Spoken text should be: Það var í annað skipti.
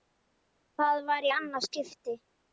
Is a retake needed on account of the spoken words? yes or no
no